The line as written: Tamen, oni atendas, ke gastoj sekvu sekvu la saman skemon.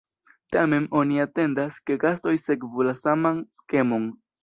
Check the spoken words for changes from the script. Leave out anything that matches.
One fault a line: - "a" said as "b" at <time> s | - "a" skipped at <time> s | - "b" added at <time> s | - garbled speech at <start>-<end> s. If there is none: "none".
- "sekvu" skipped at 2.9 s